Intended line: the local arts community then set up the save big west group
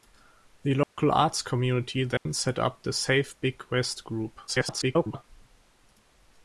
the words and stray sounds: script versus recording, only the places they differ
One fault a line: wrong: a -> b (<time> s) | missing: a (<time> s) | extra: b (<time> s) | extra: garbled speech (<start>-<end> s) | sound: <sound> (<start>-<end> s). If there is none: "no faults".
sound: dropout (0.8-1.0 s)
sound: dropout (2.2-2.3 s)
extra: garbled speech (4.5-5.2 s)